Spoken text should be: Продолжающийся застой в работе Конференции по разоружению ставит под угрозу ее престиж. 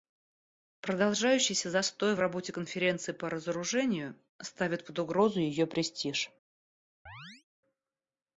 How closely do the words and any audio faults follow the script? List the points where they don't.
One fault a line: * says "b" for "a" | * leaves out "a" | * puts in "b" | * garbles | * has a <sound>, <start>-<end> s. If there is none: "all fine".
* has a chirp, 7.1-7.4 s